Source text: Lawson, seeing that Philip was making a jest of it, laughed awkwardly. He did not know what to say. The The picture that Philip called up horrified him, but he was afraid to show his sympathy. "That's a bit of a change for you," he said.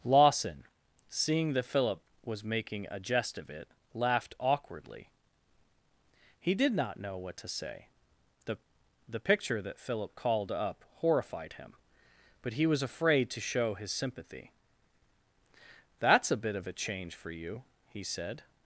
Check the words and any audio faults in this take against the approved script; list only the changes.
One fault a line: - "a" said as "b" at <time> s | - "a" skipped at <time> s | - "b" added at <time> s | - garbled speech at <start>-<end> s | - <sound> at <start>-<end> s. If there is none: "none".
none